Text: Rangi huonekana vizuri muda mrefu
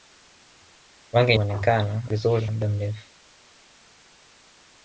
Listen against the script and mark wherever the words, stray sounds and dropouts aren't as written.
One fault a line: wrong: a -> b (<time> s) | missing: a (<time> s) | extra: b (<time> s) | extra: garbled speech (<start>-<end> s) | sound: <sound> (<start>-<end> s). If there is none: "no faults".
no faults